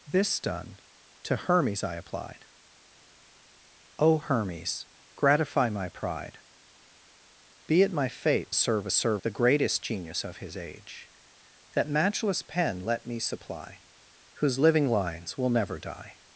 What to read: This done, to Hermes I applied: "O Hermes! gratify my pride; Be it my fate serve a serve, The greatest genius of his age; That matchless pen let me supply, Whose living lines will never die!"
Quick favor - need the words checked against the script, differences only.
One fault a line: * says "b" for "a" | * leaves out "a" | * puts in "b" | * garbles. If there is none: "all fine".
all fine